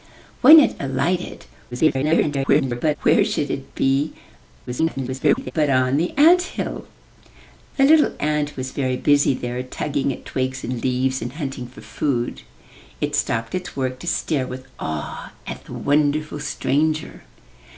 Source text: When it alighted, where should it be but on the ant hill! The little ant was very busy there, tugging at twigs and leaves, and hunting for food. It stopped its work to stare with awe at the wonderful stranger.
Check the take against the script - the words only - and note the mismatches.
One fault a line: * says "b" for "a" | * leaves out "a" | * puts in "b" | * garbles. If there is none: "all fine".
* garbles
* garbles